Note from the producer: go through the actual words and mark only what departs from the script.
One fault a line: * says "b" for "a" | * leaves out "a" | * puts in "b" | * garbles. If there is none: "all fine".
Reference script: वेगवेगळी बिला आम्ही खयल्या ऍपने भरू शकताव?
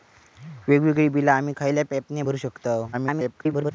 * garbles